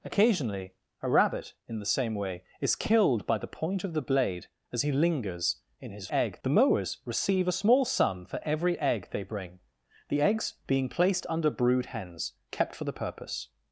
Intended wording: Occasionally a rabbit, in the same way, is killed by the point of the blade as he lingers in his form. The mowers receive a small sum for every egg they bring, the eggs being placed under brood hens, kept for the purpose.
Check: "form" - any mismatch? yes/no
yes